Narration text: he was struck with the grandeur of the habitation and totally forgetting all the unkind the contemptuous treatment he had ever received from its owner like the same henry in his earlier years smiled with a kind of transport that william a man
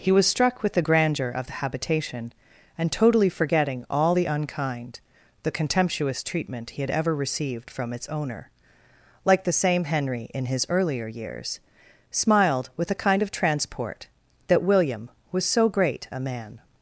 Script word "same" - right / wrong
right